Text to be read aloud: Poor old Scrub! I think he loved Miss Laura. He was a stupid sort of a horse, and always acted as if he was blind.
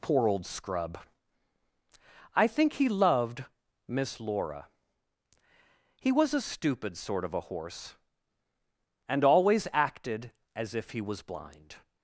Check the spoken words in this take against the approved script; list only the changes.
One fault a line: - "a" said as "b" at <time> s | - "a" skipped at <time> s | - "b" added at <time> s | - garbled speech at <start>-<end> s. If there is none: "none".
none